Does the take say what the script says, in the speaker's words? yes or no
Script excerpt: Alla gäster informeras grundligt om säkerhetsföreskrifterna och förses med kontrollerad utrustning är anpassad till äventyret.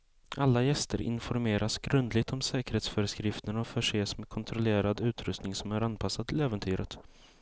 no